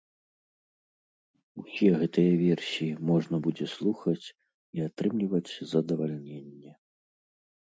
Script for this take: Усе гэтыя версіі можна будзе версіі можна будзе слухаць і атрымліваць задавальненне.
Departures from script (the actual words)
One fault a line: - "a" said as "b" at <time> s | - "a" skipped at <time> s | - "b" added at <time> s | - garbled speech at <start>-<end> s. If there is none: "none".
- "версіі можна будзе" skipped at 3.7 s